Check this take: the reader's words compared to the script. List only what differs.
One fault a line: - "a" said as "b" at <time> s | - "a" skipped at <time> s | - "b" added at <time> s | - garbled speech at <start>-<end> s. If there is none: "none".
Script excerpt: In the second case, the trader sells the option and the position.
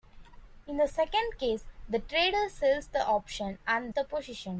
none